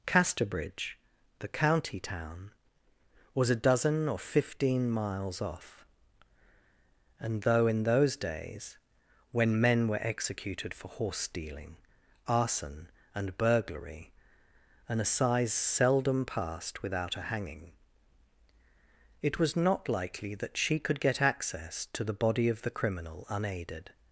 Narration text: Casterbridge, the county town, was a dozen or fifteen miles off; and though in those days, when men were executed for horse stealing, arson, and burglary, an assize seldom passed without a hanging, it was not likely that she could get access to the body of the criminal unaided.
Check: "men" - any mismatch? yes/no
no